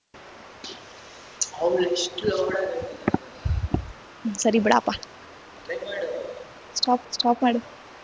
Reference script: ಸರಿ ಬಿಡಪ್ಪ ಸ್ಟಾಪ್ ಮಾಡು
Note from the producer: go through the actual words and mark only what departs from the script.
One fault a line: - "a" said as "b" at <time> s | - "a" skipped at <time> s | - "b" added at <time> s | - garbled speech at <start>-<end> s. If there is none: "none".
- "ಸ್ಟಾಪ್" added at 7.1 s